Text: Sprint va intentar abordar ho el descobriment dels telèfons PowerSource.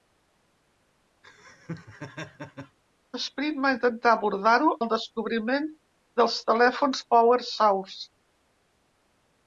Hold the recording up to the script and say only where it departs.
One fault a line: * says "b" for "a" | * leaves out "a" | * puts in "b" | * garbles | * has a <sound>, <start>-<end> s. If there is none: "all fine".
* has a laugh, 1.2-2.8 s